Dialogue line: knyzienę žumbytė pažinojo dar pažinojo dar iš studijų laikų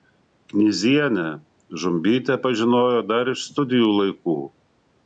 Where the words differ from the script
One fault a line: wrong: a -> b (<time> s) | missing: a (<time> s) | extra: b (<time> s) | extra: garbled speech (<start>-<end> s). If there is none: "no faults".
missing: pažinojo dar (3.4 s)